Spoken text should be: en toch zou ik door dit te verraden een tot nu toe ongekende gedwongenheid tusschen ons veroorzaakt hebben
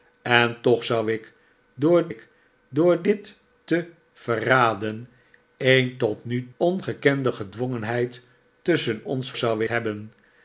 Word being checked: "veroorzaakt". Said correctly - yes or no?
no